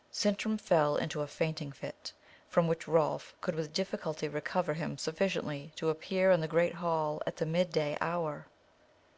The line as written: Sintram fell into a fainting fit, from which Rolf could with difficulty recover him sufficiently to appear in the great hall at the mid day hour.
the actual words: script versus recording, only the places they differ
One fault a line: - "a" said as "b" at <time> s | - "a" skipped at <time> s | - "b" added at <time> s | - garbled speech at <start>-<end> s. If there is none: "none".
none